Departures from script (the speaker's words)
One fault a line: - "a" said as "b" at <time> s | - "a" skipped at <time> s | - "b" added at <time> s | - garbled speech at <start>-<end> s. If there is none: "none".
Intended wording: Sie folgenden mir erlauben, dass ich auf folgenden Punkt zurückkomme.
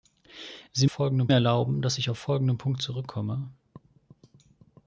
none